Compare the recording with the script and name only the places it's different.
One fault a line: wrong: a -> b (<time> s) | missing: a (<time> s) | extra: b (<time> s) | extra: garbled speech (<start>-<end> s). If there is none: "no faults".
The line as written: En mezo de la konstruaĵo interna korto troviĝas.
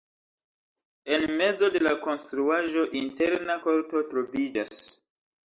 no faults